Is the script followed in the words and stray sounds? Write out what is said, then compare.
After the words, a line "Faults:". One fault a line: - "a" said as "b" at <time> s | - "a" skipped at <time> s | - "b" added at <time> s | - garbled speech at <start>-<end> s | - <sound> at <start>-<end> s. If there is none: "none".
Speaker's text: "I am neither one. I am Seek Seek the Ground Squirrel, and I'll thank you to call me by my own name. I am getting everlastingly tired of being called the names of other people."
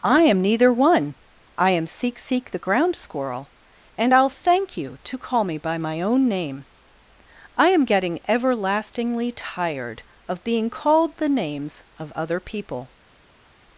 "I am neither one. I am Seek Seek the Ground Squirrel, and I'll thank you to call me by my own name. I am getting everlastingly tired of being called the names of other people."
Faults:
none